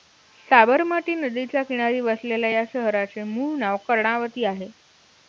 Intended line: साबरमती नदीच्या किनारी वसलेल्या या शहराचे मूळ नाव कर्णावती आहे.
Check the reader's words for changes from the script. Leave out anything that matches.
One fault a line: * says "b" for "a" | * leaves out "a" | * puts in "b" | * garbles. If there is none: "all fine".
all fine